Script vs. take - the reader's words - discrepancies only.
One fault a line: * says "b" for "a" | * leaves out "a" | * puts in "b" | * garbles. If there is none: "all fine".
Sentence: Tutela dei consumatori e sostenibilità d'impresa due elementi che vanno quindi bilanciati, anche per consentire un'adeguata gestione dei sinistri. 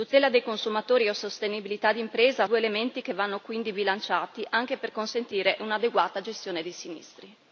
all fine